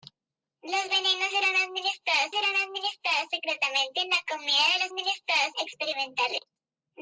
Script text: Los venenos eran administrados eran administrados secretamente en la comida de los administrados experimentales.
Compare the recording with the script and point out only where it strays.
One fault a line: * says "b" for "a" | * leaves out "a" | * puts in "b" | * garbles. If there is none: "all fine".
all fine